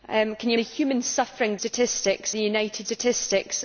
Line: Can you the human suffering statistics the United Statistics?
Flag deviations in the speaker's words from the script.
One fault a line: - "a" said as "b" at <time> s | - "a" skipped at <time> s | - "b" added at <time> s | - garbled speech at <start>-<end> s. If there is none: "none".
none